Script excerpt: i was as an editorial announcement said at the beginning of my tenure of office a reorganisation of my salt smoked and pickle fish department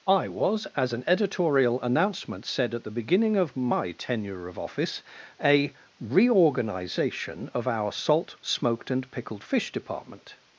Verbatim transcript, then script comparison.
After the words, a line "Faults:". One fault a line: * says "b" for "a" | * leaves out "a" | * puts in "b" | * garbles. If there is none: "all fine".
i was as an editorial announcement said at the beginning of my tenure of office a reorganisation of our salt smoked and pickled fish department
Faults:
* says "our" for "my"
* says "pickled" for "pickle"